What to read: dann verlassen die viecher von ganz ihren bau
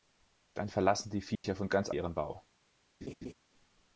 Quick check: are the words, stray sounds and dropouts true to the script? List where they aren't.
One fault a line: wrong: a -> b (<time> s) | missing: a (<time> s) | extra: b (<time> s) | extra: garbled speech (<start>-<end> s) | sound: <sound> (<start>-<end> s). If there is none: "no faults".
sound: dropout (1.4-1.4 s)
sound: laugh (3.0-3.3 s)